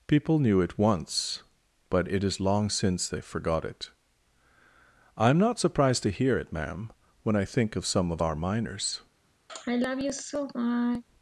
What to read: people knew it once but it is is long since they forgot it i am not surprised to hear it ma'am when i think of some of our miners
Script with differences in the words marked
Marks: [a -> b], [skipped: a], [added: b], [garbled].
people knew it once but it is [skipped: is] long since they forgot it i am not surprised to hear it ma'am when i think of some of our miners